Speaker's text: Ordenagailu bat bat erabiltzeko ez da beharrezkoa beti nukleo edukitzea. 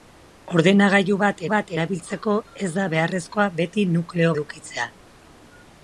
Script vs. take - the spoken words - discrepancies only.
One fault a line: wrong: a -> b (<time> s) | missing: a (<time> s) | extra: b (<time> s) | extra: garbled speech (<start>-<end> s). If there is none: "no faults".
no faults